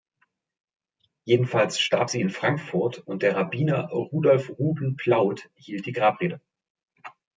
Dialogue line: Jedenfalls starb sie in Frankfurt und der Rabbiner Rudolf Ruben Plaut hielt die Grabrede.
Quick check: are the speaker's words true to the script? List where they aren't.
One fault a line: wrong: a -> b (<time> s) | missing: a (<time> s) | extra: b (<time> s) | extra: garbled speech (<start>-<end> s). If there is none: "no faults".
no faults